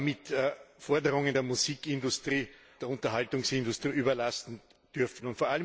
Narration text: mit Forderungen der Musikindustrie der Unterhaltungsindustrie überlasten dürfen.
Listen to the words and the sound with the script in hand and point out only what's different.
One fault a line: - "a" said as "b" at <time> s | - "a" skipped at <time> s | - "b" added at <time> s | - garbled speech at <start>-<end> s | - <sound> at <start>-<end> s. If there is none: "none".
none